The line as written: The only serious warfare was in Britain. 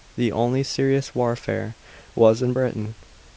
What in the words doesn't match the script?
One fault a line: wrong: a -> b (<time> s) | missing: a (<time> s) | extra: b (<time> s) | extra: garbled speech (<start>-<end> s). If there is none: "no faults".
no faults